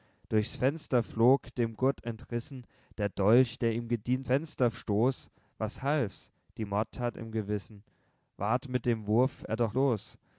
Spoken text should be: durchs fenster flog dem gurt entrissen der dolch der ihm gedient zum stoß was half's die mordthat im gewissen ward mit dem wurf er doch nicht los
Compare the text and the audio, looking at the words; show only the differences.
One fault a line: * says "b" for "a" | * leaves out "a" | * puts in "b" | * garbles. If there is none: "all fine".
* says "fenster" for "zum"
* leaves out "nicht"